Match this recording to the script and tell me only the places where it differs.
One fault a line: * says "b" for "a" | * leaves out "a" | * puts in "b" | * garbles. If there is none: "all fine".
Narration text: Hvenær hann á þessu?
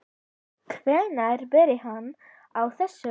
* puts in "byrjaði"